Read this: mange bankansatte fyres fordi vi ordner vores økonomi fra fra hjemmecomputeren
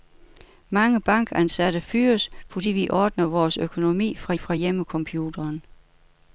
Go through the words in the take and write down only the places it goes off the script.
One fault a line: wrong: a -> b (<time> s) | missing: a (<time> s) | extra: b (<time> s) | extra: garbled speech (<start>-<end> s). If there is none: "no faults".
no faults